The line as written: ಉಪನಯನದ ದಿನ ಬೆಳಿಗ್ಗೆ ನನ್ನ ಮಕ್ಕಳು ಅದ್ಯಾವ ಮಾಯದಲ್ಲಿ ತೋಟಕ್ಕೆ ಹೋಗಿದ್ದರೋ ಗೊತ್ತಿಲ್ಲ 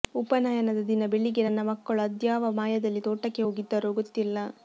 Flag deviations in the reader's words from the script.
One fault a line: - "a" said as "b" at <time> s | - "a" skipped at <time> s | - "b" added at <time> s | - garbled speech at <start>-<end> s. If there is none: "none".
none